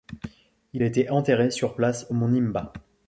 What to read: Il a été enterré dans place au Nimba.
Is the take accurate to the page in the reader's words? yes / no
no